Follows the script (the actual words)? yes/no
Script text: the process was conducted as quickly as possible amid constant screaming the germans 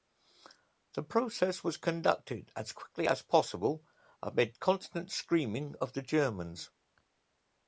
no